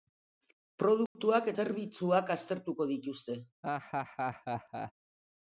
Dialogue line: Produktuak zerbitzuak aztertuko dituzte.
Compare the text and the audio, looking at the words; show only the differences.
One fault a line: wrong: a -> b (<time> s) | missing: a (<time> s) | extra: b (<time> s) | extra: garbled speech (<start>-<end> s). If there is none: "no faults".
no faults